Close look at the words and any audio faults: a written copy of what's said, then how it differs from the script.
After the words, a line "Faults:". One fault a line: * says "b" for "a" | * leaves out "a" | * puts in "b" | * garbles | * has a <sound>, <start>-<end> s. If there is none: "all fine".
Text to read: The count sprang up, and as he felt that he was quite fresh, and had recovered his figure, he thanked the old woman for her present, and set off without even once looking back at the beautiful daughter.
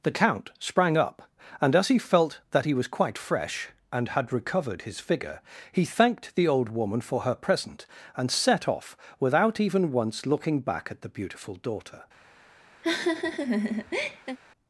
The count sprang up, and as he felt that he was quite fresh, and had recovered his figure, he thanked the old woman for her present, and set off without even once looking back at the beautiful daughter.
Faults:
* has a laugh, 12.8-14.4 s